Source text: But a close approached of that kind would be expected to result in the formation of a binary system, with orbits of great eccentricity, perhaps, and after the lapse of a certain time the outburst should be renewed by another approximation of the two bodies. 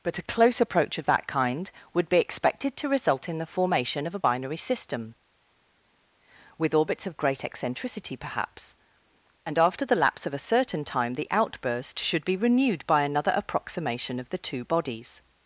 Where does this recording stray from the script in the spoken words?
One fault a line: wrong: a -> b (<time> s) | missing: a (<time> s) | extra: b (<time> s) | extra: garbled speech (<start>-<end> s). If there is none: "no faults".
wrong: approached -> approach (0.6 s)